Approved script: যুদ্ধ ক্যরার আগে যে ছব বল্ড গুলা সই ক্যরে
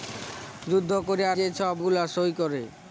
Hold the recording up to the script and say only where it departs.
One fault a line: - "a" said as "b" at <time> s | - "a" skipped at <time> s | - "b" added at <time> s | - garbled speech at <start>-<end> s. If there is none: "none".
- "আগে" skipped at 1.4 s
- "বল্ড" skipped at 1.8 s